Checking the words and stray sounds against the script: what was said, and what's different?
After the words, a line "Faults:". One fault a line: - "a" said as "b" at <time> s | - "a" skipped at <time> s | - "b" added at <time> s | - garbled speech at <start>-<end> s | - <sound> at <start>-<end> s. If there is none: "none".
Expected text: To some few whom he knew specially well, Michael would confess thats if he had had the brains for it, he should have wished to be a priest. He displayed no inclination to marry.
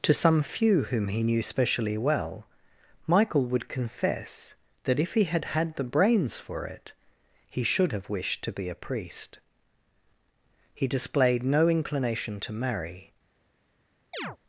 To some few whom he knew specially well, Michael would confess that if he had had the brains for it, he should have wished to be a priest. He displayed no inclination to marry.
Faults:
- "thats" said as "that" at 4.8 s
- chirp at 14.1-14.4 s